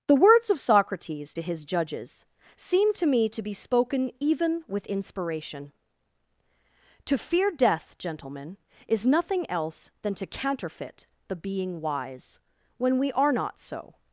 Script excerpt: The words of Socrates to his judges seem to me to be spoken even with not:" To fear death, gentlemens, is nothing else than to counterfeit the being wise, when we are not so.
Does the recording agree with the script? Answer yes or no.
no